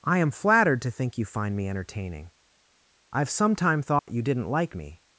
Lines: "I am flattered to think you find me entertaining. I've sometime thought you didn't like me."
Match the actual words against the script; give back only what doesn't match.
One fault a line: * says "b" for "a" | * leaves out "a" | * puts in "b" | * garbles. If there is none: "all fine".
all fine